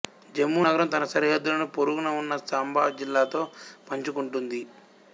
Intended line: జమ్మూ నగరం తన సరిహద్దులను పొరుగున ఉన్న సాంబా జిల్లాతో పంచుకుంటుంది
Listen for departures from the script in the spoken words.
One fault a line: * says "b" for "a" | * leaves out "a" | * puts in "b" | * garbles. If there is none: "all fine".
all fine